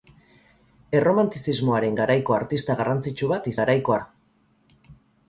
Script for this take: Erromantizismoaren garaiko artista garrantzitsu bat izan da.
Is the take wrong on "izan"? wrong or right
wrong